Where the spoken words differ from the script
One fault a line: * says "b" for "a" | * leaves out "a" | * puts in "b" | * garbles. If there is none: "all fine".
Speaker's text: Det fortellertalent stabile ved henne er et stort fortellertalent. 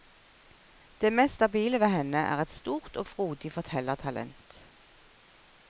* says "mest" for "fortellertalent"
* puts in "og frodig"